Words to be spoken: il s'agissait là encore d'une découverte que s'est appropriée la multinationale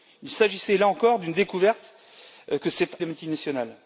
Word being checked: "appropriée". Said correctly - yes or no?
no